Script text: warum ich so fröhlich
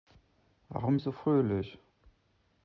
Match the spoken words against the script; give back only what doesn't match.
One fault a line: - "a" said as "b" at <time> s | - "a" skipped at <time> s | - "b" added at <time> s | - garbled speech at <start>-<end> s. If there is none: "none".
none